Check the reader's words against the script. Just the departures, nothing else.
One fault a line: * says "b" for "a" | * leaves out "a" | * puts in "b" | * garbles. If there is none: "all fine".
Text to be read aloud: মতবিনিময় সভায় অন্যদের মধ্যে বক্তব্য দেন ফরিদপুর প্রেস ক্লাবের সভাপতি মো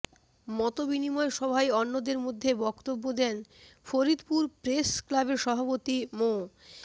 all fine